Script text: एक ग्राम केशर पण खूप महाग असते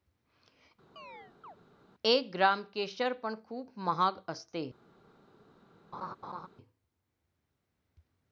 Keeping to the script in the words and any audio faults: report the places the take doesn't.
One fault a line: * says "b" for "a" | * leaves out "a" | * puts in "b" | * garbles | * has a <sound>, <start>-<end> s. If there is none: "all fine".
* has a chirp, 1.0-1.6 s
* has a laugh, 5.9-6.5 s